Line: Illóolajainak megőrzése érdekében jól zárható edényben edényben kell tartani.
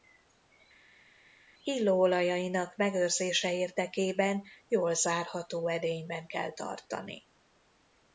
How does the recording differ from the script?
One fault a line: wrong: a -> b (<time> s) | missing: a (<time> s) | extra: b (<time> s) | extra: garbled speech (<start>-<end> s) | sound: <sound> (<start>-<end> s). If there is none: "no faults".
missing: edényben (6.3 s)